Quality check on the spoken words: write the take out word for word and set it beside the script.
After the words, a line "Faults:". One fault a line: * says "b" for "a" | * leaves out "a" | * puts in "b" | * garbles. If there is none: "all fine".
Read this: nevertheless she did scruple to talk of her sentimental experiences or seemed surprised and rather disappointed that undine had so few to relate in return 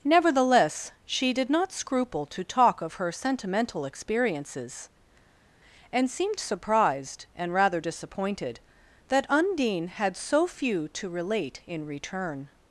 nevertheless she did not scruple to talk of her sentimental experiences and seemed surprised and rather disappointed that undine had so few to relate in return
Faults:
* puts in "not"
* says "and" for "or"